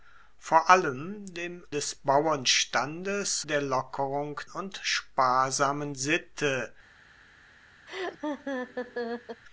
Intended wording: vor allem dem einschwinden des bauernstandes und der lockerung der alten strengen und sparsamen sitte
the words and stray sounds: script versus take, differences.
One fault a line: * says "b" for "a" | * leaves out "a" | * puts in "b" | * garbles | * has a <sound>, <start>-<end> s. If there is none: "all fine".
* leaves out "einschwinden"
* leaves out "und"
* leaves out "der alten strengen"
* has a laugh, 7.9-9.4 s